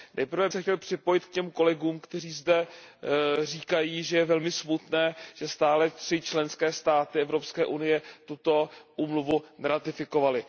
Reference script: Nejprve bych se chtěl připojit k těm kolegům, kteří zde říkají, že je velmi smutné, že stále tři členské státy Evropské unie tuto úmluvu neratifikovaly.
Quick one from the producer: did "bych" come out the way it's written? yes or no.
no